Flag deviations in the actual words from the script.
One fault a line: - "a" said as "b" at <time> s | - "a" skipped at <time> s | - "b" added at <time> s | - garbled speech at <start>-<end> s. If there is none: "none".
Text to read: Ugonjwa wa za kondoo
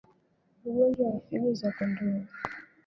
- "figo" added at 1.3 s